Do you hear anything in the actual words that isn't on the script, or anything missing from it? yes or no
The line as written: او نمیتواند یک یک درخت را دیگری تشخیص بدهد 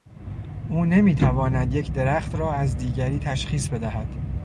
yes